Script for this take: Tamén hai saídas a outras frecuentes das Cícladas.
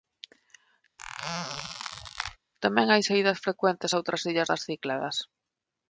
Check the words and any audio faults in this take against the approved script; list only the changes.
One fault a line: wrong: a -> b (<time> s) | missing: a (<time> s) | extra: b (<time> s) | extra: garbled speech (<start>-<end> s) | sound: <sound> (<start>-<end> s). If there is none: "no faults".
sound: squeak (1.0-2.4 s)
extra: frecuentes (3.4 s)
wrong: frecuentes -> illas (4.3 s)